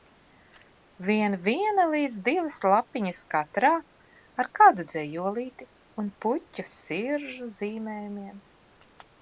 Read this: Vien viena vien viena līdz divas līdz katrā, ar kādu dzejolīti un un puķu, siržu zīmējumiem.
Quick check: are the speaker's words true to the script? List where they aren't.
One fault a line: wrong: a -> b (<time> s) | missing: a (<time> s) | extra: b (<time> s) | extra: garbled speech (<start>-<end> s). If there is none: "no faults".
missing: vien viena (1.8 s)
wrong: līdz -> lapiņas (2.7 s)
missing: un (6.1 s)